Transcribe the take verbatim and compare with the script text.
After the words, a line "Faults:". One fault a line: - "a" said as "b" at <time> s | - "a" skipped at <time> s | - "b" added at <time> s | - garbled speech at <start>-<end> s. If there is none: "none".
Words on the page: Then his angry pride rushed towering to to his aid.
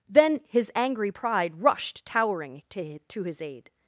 Then his angry pride rushed towering to to his aid.
Faults:
none